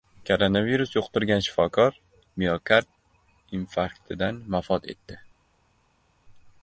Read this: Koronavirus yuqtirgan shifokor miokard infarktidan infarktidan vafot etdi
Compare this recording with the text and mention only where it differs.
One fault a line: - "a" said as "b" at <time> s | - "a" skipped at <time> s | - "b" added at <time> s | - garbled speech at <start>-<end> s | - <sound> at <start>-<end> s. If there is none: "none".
- "infarktidan" skipped at 4.4 s